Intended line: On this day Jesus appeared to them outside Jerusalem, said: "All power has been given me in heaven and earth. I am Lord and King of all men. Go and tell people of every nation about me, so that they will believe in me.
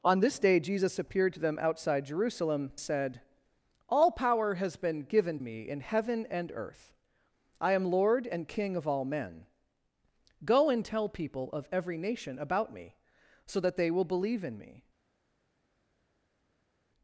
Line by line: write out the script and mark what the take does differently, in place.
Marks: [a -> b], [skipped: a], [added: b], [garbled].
On this day Jesus appeared to them outside Jerusalem, said: "All power has been given me in heaven and earth. I am Lord and King of all men. Go and tell people of every nation about me, so that they will believe in me.